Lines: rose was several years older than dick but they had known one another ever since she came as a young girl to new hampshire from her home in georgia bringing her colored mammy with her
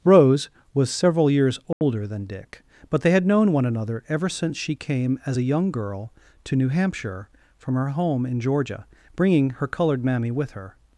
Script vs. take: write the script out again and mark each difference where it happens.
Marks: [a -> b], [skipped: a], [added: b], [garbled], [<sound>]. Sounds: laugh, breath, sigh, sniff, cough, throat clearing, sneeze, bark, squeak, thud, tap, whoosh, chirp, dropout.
rose was several years older [dropout] than dick but they had known one another ever since she came as a young girl to new hampshire from her home in georgia bringing her colored mammy with her